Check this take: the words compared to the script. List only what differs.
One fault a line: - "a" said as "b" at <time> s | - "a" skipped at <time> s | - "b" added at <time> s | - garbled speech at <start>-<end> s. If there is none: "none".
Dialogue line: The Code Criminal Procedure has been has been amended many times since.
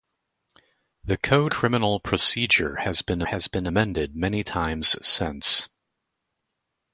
none